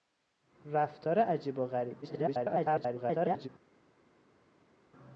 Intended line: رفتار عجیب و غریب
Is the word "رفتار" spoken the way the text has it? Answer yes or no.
yes